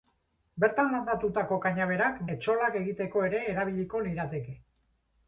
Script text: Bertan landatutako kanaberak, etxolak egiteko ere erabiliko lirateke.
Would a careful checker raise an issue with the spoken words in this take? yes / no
no